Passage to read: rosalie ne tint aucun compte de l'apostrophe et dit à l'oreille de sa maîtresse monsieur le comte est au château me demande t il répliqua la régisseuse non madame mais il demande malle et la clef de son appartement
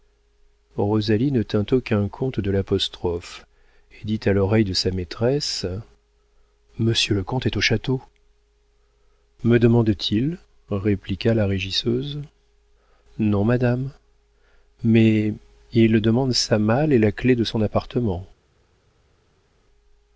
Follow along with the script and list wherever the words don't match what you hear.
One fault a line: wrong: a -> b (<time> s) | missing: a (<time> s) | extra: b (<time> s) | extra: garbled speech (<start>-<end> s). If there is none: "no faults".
extra: sa (16.3 s)